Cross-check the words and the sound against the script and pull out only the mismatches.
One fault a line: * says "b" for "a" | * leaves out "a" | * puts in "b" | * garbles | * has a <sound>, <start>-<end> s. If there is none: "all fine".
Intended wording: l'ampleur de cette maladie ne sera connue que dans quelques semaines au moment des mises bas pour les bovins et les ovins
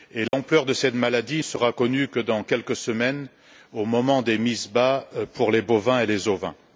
* has a dropout, 0.3-0.3 s
* leaves out "ne"